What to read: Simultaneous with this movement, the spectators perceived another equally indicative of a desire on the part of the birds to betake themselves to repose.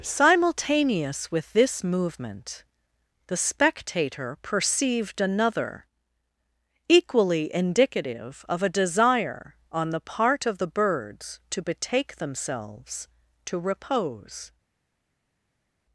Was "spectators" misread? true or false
true